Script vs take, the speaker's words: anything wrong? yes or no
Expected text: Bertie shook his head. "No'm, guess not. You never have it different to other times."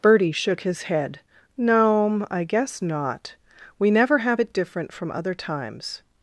yes